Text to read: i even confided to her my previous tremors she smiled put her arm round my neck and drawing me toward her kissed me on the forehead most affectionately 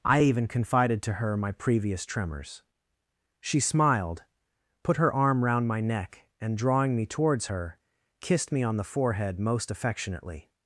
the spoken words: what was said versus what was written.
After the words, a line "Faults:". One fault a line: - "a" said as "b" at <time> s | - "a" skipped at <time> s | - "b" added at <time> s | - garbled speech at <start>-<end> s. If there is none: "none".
i even confided to her my previous tremors she smiled put her arm round my neck and drawing me towards her kissed me on the forehead most affectionately
Faults:
- "toward" said as "towards" at 7.1 s